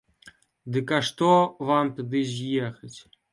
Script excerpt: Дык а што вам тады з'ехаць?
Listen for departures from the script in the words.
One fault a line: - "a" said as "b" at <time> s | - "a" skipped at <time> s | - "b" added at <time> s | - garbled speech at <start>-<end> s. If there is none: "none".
none